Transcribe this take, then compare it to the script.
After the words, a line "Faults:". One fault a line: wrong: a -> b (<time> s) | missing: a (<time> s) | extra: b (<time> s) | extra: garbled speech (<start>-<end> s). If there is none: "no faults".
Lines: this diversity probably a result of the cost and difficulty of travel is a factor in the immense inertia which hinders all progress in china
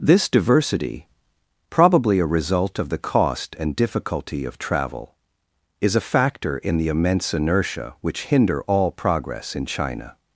this diversity probably a result of the cost and difficulty of travel is a factor in the immense inertia which hinder all progress in china
Faults:
wrong: hinders -> hinder (8.2 s)